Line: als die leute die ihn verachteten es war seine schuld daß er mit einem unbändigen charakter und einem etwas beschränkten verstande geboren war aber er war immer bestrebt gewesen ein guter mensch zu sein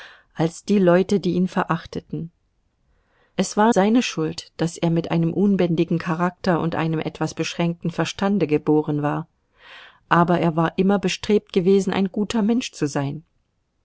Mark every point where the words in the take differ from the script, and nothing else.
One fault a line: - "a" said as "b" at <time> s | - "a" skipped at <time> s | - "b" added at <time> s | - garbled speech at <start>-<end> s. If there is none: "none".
none